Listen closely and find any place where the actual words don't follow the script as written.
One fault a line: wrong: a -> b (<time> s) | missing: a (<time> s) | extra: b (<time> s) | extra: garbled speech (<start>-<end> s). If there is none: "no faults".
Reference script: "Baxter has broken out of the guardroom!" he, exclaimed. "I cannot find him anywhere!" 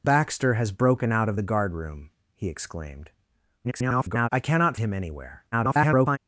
extra: garbled speech (3.6-4.3 s)
missing: find (4.8 s)
extra: garbled speech (5.5-6.2 s)